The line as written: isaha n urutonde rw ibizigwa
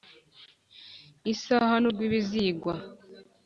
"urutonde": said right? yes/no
no